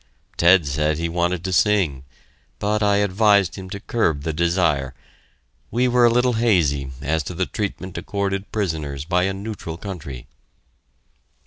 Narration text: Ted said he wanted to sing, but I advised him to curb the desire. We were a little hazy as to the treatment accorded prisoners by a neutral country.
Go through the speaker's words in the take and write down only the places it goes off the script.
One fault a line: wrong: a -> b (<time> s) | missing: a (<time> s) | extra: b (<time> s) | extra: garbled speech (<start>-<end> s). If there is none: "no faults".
no faults